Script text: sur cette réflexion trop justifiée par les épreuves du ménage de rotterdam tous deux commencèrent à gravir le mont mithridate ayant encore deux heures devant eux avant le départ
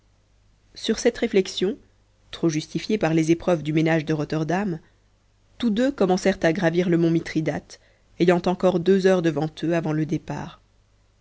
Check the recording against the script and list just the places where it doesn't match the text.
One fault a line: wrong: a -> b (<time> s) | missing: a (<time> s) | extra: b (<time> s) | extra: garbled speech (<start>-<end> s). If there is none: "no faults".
no faults